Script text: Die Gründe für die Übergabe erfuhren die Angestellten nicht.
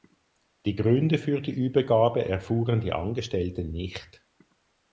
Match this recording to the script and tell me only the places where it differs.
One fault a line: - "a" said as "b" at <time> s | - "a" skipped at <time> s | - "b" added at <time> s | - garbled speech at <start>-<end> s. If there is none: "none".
none